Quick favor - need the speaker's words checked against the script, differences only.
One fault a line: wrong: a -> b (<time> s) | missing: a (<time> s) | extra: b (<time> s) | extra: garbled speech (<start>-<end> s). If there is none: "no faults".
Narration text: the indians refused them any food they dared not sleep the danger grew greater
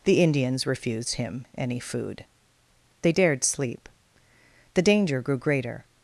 wrong: them -> him (1.1 s)
missing: not (3.4 s)